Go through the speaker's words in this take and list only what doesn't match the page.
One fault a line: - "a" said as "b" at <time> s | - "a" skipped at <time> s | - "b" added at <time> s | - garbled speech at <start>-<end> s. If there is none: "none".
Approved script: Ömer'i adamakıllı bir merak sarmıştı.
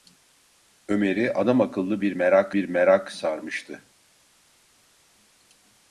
- "bir merak" added at 2.5 s